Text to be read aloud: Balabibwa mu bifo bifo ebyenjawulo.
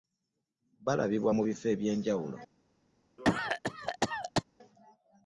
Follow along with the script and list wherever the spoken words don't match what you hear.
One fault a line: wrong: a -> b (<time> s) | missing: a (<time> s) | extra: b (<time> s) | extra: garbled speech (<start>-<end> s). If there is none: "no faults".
missing: bifo (1.6 s)